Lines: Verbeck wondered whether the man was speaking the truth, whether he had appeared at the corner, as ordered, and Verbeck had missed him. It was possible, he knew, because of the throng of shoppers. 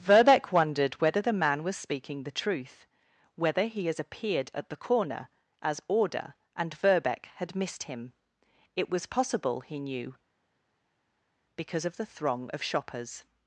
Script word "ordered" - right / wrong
wrong